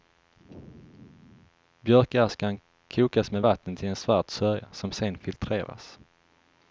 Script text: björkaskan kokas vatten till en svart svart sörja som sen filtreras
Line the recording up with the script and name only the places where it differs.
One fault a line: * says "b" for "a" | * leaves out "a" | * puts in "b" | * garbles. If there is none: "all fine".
* puts in "med"
* leaves out "svart"